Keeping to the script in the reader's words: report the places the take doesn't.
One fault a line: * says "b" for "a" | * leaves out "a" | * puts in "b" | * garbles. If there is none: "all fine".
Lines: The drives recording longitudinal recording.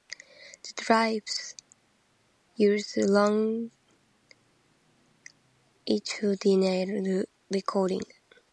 * says "used" for "recording"